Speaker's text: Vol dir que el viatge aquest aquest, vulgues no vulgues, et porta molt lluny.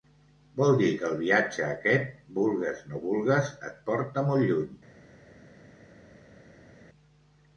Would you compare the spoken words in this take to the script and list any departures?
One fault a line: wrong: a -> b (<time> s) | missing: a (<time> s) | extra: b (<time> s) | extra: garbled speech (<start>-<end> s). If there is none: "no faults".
missing: aquest (2.1 s)